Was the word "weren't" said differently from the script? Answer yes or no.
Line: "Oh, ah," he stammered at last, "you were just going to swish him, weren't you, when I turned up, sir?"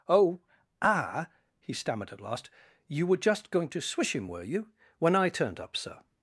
yes